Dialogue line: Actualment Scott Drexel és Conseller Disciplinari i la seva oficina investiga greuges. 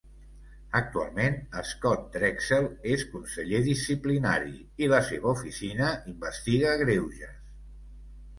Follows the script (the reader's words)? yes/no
yes